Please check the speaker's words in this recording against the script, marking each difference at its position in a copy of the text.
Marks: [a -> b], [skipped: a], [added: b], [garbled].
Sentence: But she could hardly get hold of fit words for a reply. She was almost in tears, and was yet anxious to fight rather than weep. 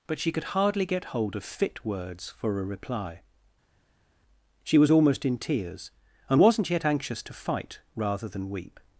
But she could hardly get hold of fit words for a reply. She was almost in tears, and [was -> wasn't] yet anxious to fight rather than weep.